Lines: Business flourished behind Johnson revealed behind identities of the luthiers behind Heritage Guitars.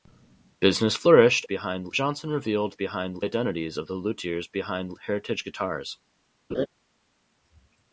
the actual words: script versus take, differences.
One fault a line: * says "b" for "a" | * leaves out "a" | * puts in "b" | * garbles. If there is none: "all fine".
all fine